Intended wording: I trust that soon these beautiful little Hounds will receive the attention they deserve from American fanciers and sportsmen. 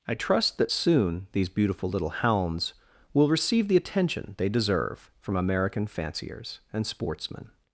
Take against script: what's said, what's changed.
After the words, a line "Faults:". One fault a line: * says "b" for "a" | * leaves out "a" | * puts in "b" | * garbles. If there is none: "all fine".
I trust that soon these beautiful little Hounds will receive the attention they deserve from American fanciers and sportsmen.
Faults:
all fine